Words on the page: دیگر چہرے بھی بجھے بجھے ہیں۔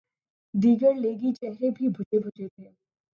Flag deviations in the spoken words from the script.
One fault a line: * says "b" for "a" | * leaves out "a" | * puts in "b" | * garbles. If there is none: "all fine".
* puts in "لیگی"
* says "تھے" for "ہیں"